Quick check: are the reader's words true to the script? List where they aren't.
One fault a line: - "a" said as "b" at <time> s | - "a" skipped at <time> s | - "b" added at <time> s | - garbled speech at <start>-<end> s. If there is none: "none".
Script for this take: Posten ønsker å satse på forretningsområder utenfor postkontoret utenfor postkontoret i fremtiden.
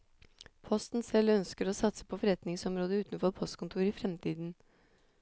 - "selv" added at 1.1 s
- "utenfor postkontoret" skipped at 3.9 s